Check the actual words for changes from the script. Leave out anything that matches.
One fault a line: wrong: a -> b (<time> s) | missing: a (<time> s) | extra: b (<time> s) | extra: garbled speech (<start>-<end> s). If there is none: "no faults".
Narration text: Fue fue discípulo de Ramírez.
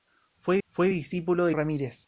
no faults